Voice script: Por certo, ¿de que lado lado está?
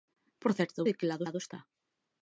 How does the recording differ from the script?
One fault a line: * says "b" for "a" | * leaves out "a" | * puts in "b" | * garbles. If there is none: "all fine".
all fine